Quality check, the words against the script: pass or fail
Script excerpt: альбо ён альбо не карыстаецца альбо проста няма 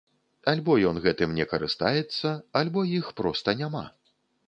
fail